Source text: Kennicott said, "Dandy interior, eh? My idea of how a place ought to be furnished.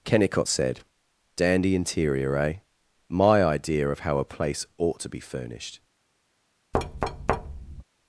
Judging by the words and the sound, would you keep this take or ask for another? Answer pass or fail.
fail